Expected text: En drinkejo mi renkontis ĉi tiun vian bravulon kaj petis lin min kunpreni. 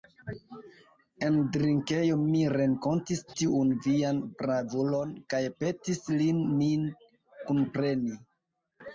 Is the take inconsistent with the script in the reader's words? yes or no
yes